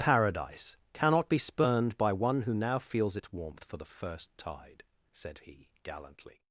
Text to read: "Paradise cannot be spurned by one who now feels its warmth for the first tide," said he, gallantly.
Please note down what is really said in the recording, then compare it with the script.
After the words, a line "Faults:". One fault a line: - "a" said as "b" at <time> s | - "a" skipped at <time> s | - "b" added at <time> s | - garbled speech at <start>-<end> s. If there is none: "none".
"Paradise cannot be spurned by one who now feels its warmth for the first tide," said he, gallantly.
Faults:
none